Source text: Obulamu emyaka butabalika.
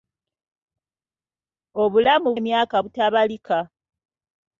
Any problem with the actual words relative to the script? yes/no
no